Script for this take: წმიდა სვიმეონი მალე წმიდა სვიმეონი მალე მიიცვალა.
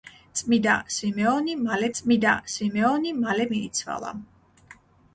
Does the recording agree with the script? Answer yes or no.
yes